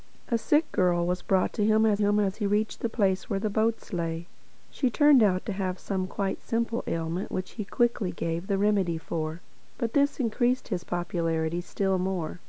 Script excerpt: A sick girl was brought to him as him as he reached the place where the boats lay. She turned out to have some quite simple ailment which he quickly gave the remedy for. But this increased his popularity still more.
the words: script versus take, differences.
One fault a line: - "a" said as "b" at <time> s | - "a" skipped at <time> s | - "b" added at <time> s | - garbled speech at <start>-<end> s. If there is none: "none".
none